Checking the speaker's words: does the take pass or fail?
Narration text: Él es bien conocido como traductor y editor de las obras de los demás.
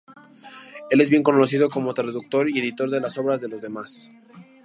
pass